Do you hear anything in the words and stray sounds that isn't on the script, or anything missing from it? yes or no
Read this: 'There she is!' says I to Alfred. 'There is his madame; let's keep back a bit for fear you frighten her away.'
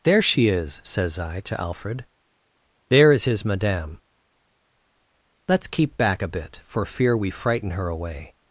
yes